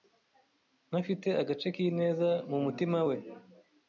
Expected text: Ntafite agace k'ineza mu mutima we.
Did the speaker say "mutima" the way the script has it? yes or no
yes